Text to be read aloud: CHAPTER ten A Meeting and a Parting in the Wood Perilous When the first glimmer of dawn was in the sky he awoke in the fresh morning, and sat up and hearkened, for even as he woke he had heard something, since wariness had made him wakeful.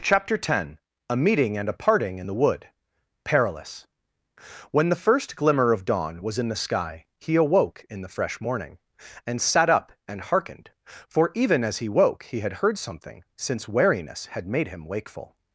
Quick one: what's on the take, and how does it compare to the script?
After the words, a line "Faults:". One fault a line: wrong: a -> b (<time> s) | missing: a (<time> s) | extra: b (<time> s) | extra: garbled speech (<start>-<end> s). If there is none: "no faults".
CHAPTER ten A Meeting and a Parting in the Wood Perilous When the first glimmer of dawn was in the sky he awoke in the fresh morning, and sat up and hearkened, for even as he woke he had heard something, since wariness had made him wakeful.
Faults:
no faults